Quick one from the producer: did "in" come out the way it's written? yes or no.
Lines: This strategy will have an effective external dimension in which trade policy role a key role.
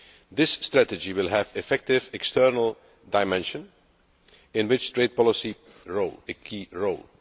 yes